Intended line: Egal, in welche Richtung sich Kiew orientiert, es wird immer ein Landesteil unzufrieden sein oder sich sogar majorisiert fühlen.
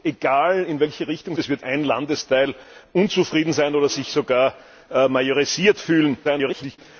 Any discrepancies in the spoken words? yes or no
yes